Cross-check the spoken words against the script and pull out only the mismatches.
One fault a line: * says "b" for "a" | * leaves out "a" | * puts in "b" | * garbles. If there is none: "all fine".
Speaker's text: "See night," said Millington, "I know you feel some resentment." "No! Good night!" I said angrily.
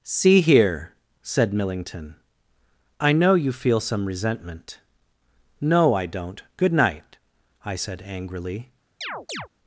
* says "here" for "night"
* puts in "I don't"